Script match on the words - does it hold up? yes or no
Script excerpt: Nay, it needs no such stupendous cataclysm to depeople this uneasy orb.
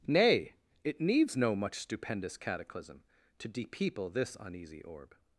no